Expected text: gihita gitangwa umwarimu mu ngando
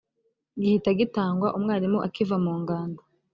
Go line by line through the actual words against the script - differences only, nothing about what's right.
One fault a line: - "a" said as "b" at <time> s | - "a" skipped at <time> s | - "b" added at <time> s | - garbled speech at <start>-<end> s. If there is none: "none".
- "akiva" added at 2.1 s